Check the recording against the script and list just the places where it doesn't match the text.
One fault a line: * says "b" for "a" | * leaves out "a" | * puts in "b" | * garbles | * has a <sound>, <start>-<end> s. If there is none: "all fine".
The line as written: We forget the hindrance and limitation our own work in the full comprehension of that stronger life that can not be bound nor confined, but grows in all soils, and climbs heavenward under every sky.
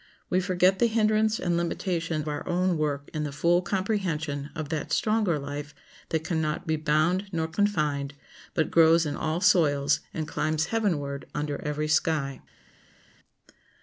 all fine